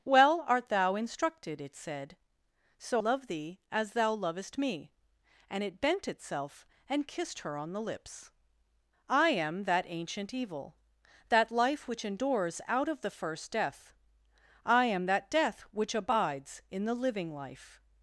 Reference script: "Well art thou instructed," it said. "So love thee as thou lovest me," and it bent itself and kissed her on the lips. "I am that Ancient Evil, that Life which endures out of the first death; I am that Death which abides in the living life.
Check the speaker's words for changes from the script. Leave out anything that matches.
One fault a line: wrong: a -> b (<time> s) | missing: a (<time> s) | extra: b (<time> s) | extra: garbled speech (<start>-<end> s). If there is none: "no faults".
no faults